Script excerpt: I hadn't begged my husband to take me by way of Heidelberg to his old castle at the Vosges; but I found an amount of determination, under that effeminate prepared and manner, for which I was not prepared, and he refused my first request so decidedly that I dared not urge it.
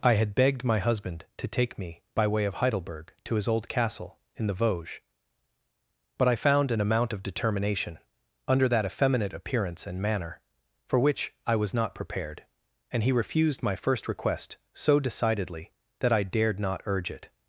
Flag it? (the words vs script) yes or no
yes